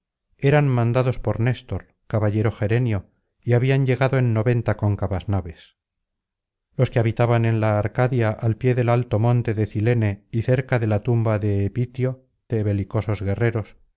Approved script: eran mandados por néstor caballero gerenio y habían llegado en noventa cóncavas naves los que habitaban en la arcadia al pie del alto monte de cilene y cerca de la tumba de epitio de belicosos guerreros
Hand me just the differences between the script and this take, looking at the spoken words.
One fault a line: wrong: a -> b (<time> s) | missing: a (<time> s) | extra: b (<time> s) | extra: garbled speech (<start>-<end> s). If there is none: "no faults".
no faults